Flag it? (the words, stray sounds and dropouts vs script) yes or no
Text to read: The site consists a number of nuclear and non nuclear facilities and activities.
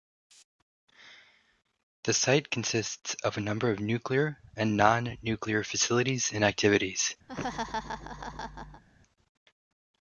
yes